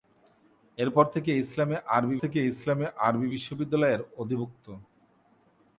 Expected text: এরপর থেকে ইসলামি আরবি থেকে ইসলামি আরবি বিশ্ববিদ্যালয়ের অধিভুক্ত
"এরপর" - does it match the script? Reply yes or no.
yes